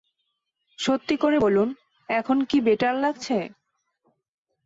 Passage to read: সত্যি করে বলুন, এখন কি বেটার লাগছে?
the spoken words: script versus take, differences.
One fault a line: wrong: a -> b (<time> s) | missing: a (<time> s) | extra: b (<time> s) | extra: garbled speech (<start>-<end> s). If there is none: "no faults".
no faults